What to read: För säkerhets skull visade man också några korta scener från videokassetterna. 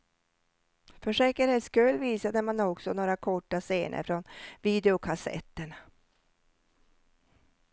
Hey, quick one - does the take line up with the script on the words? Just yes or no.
yes